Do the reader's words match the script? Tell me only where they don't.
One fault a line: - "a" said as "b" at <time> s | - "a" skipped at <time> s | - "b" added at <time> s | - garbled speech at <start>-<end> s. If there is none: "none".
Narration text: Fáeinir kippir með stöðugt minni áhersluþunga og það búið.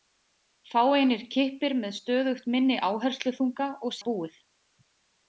none